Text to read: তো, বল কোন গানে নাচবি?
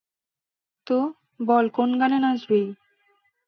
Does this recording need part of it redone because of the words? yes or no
no